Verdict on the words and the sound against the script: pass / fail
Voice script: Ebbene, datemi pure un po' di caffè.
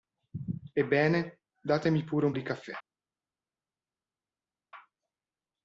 fail